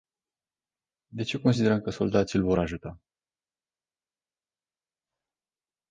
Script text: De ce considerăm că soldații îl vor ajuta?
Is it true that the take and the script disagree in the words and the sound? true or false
false